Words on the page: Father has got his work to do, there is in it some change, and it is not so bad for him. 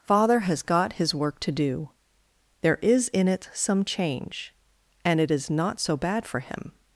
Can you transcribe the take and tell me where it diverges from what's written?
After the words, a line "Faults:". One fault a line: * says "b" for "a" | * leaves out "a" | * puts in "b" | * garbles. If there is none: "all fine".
Father has got his work to do, there is in it some change, and it is not so bad for him.
Faults:
all fine